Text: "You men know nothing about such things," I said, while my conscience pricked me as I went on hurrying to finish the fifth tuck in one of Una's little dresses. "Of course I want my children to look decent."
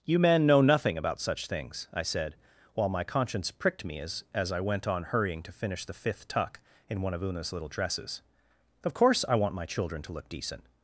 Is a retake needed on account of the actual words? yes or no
yes